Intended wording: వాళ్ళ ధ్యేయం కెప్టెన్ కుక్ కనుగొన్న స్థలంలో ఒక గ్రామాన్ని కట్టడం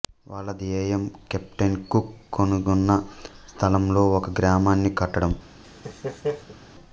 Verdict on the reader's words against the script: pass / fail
pass